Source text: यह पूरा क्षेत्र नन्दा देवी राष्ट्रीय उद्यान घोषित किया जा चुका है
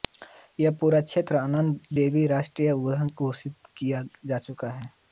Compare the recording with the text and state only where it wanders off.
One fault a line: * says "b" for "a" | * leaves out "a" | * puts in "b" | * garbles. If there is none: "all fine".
all fine